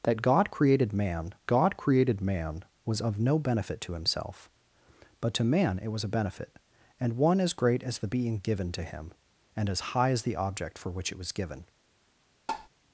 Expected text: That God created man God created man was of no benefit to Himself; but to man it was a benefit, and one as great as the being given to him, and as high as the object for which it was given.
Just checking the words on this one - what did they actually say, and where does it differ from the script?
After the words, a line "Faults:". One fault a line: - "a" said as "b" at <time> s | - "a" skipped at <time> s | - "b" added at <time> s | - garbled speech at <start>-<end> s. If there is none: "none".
That God created man God created man was of no benefit to Himself; but to man it was a benefit, and one as great as the being given to him, and as high as the object for which it was given.
Faults:
none